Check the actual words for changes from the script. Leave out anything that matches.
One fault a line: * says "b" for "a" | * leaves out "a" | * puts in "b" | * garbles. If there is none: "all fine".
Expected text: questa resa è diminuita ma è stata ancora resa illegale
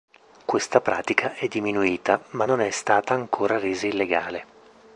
* says "pratica" for "resa"
* puts in "non"